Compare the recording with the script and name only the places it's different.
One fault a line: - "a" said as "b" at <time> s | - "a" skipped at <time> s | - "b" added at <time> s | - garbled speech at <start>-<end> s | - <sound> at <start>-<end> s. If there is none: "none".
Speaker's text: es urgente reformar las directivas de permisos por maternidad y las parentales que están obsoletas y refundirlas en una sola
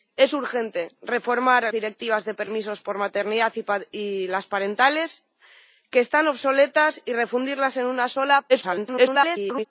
- "las" skipped at 1.7 s
- garbled speech at 8.5-9.7 s